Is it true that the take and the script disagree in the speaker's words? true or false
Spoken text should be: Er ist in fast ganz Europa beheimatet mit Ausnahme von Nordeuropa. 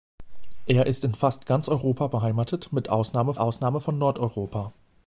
true